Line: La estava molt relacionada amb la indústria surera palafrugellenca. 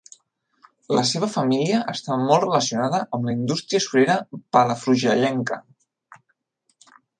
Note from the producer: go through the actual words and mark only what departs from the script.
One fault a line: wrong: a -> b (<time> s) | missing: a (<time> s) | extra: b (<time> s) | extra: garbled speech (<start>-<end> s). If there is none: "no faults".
extra: seva família (1.1 s)